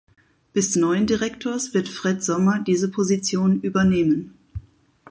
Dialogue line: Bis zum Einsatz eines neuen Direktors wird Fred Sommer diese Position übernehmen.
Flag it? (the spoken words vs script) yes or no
yes